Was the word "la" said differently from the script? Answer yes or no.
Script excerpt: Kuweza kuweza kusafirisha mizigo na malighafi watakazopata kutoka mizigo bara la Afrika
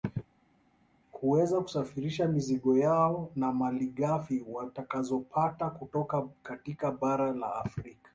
no